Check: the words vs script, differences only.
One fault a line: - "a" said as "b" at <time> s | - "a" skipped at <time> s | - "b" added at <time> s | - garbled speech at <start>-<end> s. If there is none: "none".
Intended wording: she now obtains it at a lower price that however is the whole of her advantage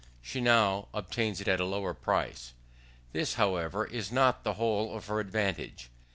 - "that" said as "this" at 3.1 s
- "not" added at 4.1 s